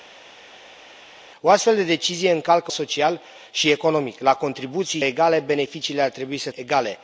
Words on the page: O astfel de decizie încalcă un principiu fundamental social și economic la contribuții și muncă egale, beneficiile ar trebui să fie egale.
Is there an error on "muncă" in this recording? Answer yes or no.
yes